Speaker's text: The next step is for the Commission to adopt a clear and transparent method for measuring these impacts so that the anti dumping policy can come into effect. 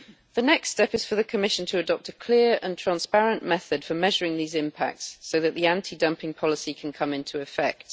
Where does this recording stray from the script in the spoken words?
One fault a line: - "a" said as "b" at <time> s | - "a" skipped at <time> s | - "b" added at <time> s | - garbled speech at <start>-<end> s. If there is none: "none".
none